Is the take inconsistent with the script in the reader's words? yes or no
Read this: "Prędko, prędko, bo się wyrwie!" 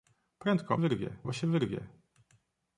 yes